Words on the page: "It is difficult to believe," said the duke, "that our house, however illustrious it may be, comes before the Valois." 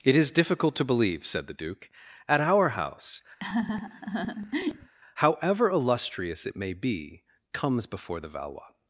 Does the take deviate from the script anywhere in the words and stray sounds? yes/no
yes